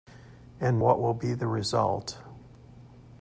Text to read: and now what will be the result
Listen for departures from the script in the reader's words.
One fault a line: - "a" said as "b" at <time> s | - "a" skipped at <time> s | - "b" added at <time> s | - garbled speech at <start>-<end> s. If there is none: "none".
- "now" skipped at 0.8 s